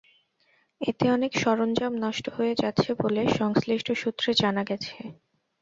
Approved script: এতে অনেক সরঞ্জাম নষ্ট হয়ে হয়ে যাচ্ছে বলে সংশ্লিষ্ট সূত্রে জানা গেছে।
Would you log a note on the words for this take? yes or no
yes